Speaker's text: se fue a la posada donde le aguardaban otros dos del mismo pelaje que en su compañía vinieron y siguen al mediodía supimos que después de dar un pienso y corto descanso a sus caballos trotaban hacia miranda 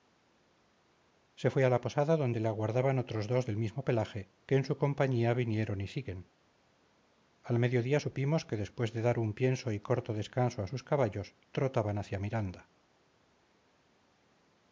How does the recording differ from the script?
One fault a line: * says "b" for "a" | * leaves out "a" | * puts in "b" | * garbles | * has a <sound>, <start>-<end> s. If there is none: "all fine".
all fine